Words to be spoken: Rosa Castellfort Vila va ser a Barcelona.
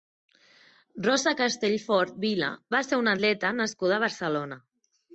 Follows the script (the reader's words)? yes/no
no